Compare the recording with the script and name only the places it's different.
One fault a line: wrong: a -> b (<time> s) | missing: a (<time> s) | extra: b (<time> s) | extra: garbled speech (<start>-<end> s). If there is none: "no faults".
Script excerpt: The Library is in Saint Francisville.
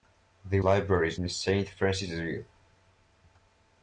no faults